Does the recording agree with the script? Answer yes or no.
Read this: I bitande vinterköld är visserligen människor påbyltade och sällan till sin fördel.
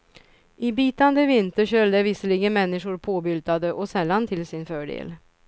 yes